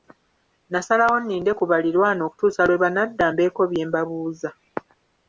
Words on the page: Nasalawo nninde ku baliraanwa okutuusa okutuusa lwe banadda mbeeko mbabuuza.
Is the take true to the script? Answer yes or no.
no